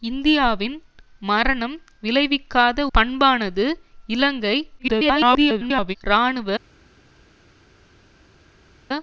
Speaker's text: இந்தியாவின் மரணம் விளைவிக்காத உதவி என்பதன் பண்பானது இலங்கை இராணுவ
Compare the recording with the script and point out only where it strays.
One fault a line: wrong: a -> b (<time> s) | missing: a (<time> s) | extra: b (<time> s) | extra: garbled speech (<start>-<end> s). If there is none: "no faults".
missing: உதவி என்பதன் (2.8 s)
extra: garbled speech (4.8-6.0 s)